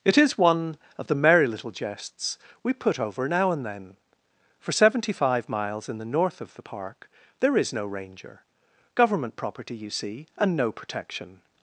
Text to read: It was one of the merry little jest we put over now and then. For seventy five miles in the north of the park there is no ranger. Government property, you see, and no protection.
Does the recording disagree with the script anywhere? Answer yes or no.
yes